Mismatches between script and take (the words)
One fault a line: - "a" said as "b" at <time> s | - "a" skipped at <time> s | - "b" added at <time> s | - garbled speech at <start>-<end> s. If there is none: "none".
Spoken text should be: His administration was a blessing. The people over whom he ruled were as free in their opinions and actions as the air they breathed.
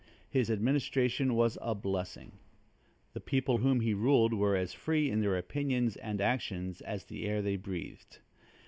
- "over" skipped at 3.6 s